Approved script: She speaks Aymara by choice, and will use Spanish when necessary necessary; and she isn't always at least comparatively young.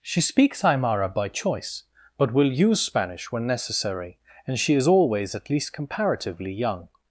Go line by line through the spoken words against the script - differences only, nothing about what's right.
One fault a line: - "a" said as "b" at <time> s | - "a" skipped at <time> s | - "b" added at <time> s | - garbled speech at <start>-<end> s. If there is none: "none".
- "and" said as "but" at 2.2 s
- "necessary" skipped at 4.2 s
- "isn't" said as "is" at 4.7 s